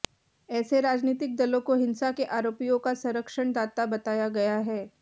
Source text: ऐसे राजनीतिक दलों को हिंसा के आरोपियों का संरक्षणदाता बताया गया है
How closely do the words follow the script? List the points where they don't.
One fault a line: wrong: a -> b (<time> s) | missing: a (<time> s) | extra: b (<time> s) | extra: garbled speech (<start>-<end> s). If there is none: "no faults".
no faults